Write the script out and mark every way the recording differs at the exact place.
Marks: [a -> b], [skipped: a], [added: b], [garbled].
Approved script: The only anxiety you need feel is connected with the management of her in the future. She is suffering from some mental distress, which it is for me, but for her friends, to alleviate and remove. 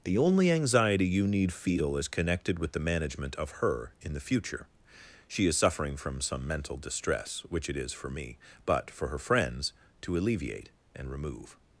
The only anxiety you need feel is connected with the management of her in the future. She is suffering from some mental distress, which it is for me, but for her friends, to alleviate and remove.